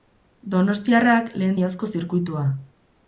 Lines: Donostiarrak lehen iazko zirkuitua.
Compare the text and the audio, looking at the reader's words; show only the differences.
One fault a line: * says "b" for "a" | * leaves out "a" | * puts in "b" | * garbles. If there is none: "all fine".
all fine